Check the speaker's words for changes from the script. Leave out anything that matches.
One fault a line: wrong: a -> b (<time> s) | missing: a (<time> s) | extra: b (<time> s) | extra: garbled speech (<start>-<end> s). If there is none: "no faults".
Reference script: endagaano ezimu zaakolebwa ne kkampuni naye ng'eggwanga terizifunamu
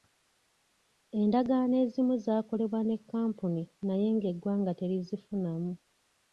no faults